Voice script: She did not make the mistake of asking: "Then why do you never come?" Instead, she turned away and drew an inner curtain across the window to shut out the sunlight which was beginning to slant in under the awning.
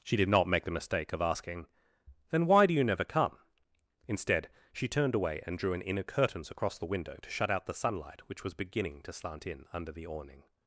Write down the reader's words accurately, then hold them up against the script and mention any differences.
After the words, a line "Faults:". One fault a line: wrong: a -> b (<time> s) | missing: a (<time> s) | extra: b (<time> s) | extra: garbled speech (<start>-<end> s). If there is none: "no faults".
She did not make the mistake of asking: "Then why do you never come?" Instead, she turned away and drew an inner curtains across the window to shut out the sunlight which was beginning to slant in under the awning.
Faults:
wrong: curtain -> curtains (6.0 s)